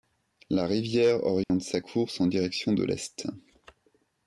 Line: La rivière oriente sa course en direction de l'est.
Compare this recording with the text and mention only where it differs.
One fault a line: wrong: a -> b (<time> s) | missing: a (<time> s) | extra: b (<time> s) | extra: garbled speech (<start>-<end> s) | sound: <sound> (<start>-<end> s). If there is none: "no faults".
sound: dropout (1.4-1.5 s)